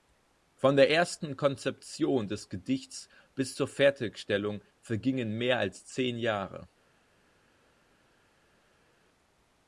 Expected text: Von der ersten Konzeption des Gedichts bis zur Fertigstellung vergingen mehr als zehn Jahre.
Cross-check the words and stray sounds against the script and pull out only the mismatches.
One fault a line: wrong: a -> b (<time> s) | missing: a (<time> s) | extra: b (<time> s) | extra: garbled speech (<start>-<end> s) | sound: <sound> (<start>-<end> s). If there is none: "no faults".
no faults